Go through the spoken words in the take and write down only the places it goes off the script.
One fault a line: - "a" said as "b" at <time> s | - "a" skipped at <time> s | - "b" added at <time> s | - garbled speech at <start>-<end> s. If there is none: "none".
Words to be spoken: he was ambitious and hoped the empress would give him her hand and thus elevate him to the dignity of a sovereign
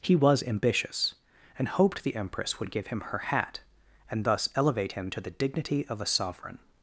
- "hand" said as "hat" at 3.2 s